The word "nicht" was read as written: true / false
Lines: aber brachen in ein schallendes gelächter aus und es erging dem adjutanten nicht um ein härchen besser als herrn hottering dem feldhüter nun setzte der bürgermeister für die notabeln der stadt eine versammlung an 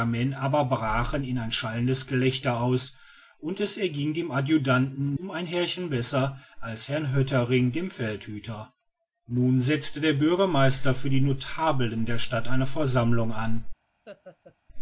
false